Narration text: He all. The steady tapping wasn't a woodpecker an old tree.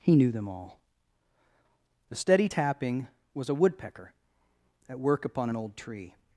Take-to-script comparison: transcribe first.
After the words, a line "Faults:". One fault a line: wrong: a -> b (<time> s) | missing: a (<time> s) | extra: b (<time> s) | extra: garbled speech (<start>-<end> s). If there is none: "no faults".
He knew them all. The steady tapping was a woodpecker at work upon an old tree.
Faults:
extra: knew them (0.1 s)
wrong: wasn't -> was (3.3 s)
extra: at work upon (4.9 s)